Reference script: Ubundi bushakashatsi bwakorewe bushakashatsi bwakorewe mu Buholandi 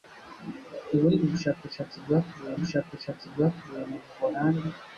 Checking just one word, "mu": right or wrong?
right